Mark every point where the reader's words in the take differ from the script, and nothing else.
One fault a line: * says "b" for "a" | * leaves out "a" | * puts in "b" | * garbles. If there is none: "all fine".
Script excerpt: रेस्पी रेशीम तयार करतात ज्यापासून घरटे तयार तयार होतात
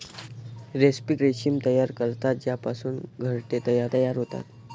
all fine